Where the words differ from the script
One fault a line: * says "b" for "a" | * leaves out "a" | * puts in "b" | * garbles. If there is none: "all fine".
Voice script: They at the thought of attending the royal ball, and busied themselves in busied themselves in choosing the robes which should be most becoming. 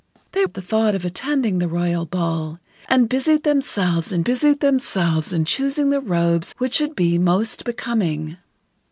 all fine